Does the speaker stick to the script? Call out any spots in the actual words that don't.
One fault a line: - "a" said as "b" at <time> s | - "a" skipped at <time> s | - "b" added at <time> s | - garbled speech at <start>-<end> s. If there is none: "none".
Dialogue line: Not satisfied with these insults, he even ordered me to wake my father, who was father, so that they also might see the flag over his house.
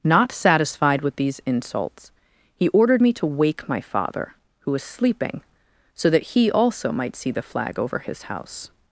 - "even" skipped at 2.7 s
- "father" said as "sleeping" at 4.8 s
- "they" said as "he" at 6.3 s